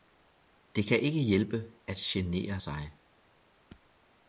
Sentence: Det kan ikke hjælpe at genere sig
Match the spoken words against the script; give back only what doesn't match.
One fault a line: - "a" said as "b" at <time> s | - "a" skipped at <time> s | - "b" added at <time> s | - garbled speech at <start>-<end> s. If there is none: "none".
none